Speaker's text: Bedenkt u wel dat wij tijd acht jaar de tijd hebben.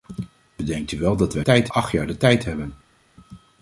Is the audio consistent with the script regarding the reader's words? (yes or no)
yes